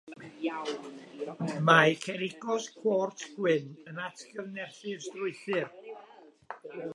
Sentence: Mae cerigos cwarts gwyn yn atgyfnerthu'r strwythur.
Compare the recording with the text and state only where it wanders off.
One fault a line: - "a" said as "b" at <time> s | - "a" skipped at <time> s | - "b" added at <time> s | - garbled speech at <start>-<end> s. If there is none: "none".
none